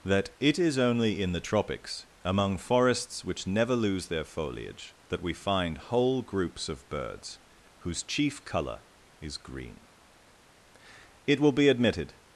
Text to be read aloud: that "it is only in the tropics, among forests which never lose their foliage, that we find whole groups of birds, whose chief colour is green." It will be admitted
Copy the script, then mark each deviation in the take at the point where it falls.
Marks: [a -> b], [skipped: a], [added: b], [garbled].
that "it is only in the tropics, among forests which never lose their foliage, that we find whole groups of birds, whose chief colour is green." It will be admitted